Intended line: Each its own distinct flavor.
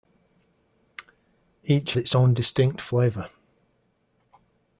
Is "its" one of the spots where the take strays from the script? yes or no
no